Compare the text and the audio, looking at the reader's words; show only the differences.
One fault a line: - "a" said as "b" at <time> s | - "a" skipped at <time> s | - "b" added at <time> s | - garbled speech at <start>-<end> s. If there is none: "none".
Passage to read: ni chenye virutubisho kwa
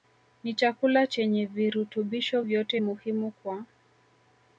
- "chakula" added at 0.5 s
- "vyote muhimu" added at 2.4 s